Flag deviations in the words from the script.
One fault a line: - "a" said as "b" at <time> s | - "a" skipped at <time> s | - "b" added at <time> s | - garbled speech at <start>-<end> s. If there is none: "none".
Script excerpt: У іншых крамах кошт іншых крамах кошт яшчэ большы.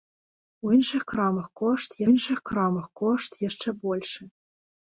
none